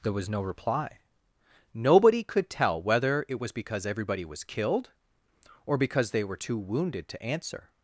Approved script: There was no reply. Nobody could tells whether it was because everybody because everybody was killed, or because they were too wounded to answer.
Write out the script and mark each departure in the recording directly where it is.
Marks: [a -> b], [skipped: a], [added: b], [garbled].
There was no reply. Nobody could [tells -> tell] whether it was because everybody [skipped: because everybody] was killed, or because they were too wounded to answer.